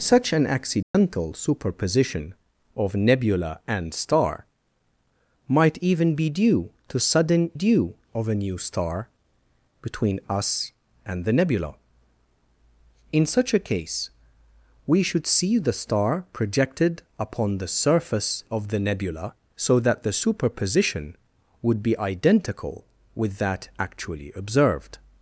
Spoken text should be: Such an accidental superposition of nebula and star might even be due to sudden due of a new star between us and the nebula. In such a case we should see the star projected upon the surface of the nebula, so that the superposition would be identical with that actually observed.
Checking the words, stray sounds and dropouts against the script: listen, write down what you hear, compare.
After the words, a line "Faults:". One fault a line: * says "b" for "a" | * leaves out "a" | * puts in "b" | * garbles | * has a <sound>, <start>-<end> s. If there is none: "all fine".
Such an accidental superposition of nebula and star might even be due to sudden due of a new star between us and the nebula. In such a case we should see the star projected upon the surface of the nebula, so that the superposition would be identical with that actually observed.
Faults:
* has a dropout, 0.8-0.9 s